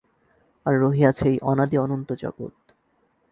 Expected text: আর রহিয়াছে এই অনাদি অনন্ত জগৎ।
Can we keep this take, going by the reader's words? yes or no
yes